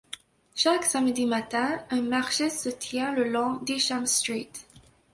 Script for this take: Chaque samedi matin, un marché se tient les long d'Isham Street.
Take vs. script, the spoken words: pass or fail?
fail